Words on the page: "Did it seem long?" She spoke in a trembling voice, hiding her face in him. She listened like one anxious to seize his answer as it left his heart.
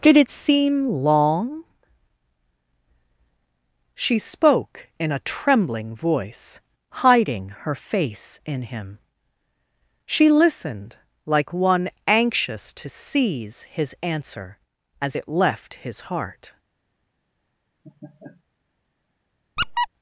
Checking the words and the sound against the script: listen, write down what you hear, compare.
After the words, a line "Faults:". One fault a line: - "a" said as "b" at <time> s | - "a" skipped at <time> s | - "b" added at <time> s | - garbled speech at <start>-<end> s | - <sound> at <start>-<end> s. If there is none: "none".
"Did it seem long?" She spoke in a trembling voice, hiding her face in him. She listened like one anxious to seize his answer as it left his heart.
Faults:
- laugh at 17.8-18.4 s
- squeak at 19.6-19.9 s